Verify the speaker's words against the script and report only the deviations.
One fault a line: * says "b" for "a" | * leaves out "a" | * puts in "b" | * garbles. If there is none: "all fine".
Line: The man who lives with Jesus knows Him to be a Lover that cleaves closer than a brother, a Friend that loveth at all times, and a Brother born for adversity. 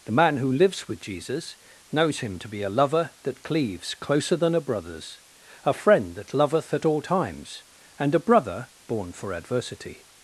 * says "brothers" for "brother"